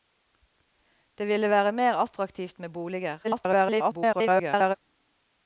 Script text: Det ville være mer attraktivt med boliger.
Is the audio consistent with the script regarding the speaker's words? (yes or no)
no